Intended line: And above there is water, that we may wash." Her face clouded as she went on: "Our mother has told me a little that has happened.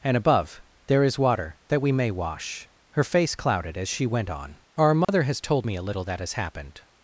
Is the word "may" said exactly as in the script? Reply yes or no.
yes